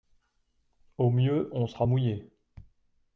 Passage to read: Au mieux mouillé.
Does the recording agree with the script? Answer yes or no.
no